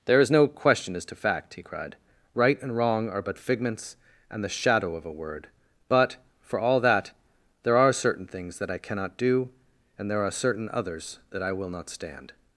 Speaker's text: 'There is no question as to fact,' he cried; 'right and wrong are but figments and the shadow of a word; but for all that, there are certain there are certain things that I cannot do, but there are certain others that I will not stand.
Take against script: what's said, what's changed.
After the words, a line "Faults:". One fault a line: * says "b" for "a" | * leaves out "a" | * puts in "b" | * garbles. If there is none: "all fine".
'There is no question as to fact,' he cried; 'right and wrong are but figments and the shadow of a word; but for all that, there are certain things that I cannot do, and there are certain others that I will not stand.
Faults:
* leaves out "there are certain"
* says "and" for "but"